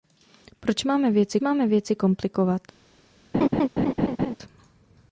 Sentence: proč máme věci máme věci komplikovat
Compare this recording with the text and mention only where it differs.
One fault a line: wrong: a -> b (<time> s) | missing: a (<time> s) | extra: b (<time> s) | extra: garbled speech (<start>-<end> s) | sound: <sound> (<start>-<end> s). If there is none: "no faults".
sound: laugh (3.3-4.4 s)